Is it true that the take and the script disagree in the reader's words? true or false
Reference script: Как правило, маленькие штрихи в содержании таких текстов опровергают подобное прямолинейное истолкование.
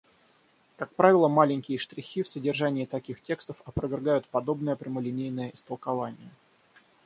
false